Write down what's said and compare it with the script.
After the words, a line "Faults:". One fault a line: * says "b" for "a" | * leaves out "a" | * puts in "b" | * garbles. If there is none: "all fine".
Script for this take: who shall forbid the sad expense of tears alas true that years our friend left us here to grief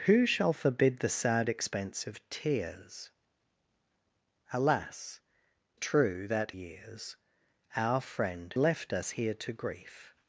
who shall forbid the sad expense of tears alas true that years our friend left us here to grief
Faults:
all fine